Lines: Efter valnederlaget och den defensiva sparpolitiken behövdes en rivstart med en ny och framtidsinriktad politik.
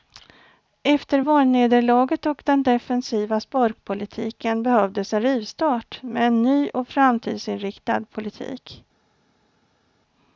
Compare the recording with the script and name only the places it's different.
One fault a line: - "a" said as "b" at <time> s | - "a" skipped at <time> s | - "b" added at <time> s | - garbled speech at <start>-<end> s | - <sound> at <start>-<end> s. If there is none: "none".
none